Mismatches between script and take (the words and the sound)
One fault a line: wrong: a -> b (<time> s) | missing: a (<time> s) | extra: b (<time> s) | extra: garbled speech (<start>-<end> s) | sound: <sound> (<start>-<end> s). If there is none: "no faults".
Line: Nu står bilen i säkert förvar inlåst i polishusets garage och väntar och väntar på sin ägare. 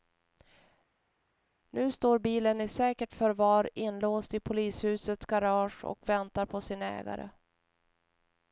missing: och väntar (6.5 s)